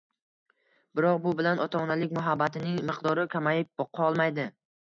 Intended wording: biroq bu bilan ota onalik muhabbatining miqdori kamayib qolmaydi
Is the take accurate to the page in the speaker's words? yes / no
yes